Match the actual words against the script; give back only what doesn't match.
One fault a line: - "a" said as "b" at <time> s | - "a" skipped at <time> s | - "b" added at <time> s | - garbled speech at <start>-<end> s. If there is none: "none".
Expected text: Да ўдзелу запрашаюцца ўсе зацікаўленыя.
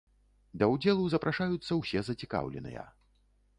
none